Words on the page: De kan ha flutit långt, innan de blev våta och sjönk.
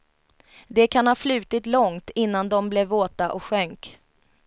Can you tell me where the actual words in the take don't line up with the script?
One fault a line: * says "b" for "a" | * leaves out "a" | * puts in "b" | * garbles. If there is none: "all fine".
all fine